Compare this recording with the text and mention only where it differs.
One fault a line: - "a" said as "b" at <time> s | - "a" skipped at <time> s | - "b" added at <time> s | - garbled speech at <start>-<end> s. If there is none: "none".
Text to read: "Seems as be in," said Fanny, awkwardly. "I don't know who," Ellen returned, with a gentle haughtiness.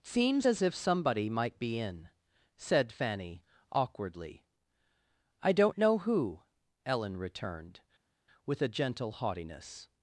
- "if somebody might" added at 0.6 s